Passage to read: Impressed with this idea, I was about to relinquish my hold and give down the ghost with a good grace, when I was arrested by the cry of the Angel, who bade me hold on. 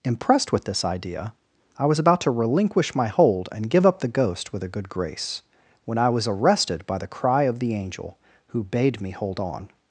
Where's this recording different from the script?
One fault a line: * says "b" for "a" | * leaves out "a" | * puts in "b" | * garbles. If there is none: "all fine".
* says "up" for "down"